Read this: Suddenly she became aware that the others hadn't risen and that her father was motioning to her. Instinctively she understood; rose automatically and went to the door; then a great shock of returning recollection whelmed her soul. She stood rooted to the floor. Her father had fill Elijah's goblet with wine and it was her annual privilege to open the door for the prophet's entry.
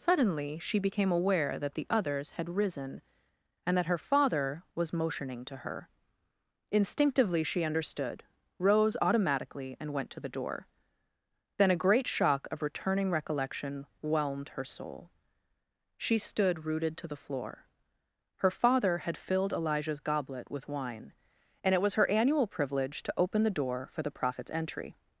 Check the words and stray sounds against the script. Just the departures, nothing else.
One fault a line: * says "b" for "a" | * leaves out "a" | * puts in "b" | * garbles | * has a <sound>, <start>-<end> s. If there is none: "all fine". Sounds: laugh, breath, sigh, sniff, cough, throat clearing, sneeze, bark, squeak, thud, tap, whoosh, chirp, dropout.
* says "had" for "hadn't"
* says "filled" for "fill"